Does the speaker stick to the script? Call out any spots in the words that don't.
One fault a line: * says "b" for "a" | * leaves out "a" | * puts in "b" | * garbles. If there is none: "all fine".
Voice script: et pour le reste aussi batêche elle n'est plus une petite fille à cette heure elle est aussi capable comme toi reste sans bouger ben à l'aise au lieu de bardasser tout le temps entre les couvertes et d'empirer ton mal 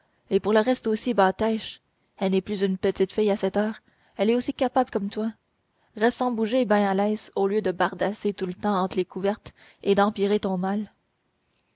all fine